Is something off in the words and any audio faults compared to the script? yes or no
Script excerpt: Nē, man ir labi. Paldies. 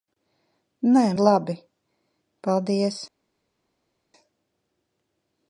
yes